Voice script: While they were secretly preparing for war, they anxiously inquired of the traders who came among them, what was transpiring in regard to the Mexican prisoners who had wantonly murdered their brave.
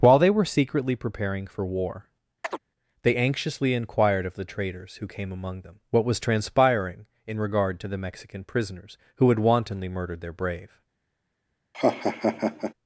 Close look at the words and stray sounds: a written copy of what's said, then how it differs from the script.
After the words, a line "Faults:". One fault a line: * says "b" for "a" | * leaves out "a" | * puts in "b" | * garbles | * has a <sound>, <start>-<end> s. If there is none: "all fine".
While they were secretly preparing for war, they anxiously inquired of the traders who came among them, what was transpiring in regard to the Mexican prisoners who had wantonly murdered their brave.
Faults:
* has a chirp, 2.4-2.6 s
* has a laugh, 11.7-12.7 s